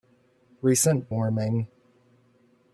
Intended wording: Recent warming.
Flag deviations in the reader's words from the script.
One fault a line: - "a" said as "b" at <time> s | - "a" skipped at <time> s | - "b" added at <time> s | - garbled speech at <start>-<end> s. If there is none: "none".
none